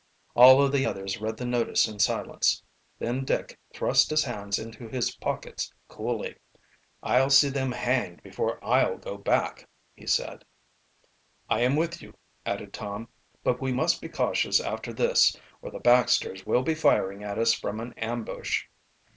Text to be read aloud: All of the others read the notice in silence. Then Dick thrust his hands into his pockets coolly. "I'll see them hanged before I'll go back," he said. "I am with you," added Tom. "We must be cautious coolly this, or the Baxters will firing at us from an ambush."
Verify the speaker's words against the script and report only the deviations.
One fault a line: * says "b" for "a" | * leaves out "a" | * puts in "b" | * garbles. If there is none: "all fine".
* puts in "But"
* says "after" for "coolly"
* puts in "be"